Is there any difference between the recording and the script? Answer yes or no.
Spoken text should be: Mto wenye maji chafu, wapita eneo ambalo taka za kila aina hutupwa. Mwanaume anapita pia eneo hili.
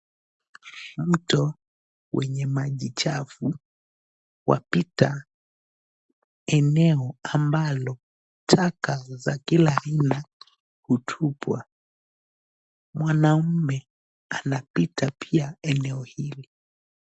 no